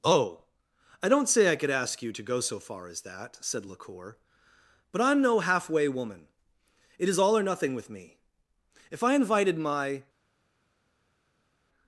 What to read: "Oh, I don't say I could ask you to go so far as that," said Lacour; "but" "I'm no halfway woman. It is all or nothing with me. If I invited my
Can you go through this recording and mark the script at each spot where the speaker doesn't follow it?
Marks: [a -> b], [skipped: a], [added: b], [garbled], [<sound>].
"Oh, I don't say I could ask you to go so far as that," said Lacour; "but" "I'm no halfway woman. It is all or nothing with me. If I invited my